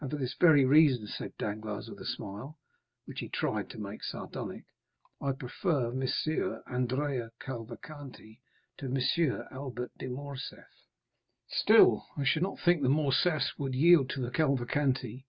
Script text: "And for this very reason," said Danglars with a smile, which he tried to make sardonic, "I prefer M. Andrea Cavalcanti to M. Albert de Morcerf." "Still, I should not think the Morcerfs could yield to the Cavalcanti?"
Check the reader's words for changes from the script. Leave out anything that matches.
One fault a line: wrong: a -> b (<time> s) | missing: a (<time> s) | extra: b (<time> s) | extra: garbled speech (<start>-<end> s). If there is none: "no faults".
wrong: could -> would (13.6 s)